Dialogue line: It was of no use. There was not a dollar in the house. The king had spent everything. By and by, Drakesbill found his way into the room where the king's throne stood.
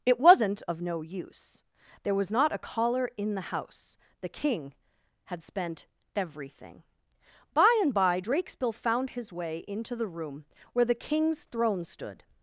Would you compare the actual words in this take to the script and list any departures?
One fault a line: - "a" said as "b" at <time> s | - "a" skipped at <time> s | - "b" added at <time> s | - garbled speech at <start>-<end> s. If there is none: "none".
- "was" said as "wasn't" at 0.2 s
- "dollar" said as "collar" at 2.6 s